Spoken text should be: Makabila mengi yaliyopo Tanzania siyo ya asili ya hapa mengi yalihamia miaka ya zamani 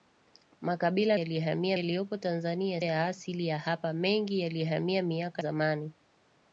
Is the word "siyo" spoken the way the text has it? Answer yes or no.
no